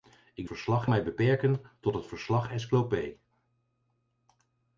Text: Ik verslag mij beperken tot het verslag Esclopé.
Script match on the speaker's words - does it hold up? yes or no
yes